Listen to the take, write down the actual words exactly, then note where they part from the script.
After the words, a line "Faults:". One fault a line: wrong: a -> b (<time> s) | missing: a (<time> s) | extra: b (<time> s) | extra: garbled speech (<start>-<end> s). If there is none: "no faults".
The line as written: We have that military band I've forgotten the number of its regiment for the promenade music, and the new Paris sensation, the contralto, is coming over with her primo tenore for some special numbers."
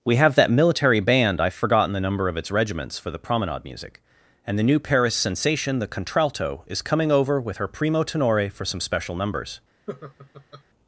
We have that military band I've forgotten the number of its regiments for the promenade music, and the new Paris sensation, the contralto, is coming over with her primo tenore for some special numbers."
Faults:
wrong: regiment -> regiments (2.5 s)